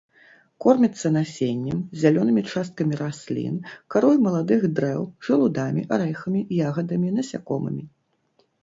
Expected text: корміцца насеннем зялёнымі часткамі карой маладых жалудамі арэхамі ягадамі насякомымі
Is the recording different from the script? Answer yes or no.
yes